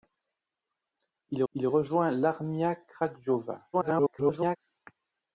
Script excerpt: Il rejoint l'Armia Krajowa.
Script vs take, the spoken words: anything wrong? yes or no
yes